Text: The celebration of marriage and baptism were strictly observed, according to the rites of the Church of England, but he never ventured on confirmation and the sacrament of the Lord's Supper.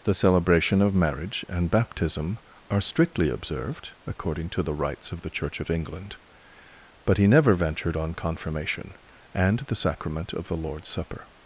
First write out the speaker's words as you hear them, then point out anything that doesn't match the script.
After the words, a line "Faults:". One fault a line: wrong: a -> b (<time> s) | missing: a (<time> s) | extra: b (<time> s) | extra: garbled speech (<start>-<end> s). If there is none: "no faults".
The celebration of marriage and baptism are strictly observed, according to the rites of the Church of England, but he never ventured on confirmation and the sacrament of the Lord's Supper.
Faults:
wrong: were -> are (2.7 s)